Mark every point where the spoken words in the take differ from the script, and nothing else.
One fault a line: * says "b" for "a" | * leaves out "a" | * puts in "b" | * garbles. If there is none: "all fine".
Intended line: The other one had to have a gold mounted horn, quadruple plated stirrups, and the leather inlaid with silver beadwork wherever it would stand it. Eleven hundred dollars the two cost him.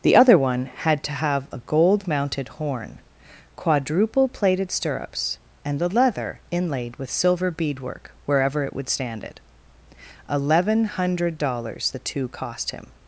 all fine